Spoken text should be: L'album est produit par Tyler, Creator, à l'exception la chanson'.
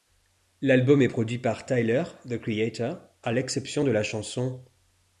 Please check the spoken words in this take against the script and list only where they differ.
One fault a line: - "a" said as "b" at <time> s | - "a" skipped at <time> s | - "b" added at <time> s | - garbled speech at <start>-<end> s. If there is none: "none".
- "The" added at 2.3 s
- "de" added at 3.8 s